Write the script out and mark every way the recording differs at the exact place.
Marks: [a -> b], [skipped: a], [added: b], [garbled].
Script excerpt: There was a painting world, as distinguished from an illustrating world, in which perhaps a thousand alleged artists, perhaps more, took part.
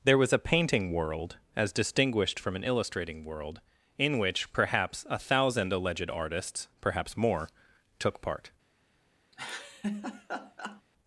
There was a painting world, as distinguished from an illustrating world, in which perhaps a thousand alleged artists, perhaps more, took part.